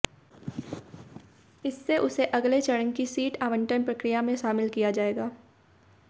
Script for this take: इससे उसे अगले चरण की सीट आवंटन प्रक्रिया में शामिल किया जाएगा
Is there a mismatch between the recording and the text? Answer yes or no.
no